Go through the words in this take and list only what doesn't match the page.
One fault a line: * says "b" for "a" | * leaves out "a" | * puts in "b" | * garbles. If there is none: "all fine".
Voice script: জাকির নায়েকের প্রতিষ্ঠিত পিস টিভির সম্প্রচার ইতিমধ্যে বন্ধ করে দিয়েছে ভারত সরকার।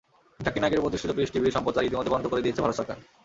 all fine